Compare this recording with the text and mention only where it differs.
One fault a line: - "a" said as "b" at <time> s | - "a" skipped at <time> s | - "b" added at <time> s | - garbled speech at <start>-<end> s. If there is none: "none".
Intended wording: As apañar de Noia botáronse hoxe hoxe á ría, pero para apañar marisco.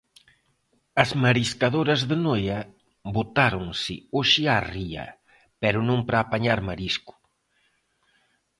- "apañar" said as "mariscadoras" at 1.2 s
- "hoxe" skipped at 4.4 s
- "non" added at 5.9 s